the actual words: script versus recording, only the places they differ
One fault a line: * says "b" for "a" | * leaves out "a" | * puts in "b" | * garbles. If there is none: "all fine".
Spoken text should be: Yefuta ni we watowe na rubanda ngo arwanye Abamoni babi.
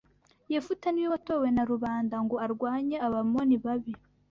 all fine